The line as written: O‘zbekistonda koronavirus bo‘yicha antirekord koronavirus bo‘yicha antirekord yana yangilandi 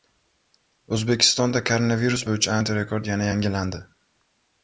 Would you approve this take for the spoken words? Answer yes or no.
no